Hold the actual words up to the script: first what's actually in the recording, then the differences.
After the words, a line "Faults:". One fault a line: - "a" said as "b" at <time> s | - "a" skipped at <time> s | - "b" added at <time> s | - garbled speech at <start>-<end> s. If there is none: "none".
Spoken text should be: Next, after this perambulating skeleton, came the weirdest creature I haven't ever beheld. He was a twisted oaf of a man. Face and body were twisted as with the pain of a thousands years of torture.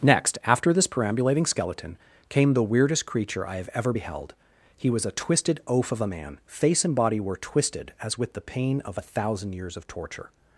Next, after this perambulating skeleton, came the weirdest creature I have ever beheld. He was a twisted oaf of a man. Face and body were twisted as with the pain of a thousand years of torture.
Faults:
- "haven't" said as "have" at 3.6 s
- "thousands" said as "thousand" at 9.0 s